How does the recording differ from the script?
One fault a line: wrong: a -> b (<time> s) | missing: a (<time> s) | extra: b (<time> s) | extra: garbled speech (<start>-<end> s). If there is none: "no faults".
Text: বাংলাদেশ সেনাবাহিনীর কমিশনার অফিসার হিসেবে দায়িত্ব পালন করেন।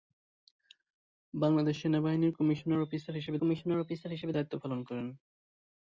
extra: কমিশনার অফিসার হিসেবে (3.4 s)